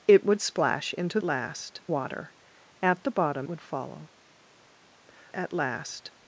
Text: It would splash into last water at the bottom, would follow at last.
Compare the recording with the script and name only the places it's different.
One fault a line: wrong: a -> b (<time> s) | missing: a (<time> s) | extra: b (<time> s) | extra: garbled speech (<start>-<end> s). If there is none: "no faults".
no faults